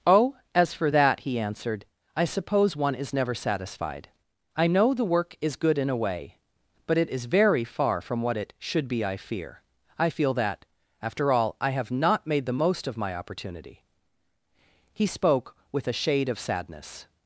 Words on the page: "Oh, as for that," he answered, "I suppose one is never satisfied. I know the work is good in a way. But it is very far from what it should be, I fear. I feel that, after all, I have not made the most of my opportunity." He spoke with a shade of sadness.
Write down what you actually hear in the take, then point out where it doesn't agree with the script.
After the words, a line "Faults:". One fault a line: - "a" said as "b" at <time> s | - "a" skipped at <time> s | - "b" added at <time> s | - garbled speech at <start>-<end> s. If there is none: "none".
"Oh, as for that," he answered, "I suppose one is never satisfied. I know the work is good in a way. But it is very far from what it should be, I fear. I feel that, after all, I have not made the most of my opportunity." He spoke with a shade of sadness.
Faults:
none